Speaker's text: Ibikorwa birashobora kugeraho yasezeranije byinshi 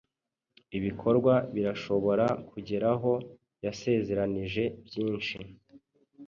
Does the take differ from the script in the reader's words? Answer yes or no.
no